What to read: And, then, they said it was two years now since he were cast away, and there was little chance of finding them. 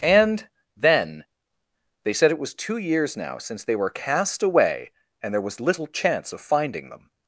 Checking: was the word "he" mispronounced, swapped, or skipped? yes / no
yes